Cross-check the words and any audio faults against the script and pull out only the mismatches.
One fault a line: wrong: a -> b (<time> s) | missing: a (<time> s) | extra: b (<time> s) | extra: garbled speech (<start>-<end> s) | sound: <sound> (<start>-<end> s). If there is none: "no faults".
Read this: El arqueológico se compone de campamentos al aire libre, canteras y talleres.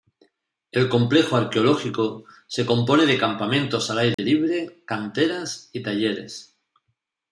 extra: complejo (0.9 s)
sound: dropout (4.1-4.2 s)